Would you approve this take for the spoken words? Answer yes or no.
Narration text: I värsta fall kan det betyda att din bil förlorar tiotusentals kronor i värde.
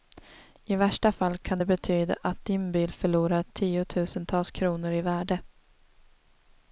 yes